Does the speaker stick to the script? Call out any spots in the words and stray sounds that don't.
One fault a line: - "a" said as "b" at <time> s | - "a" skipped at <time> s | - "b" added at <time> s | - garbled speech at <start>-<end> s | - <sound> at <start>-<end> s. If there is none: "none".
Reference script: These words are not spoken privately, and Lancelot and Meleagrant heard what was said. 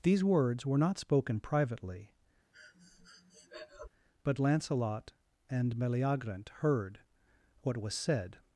- "are" said as "were" at 0.7 s
- breath at 2.5-3.9 s
- "and" said as "but" at 4.2 s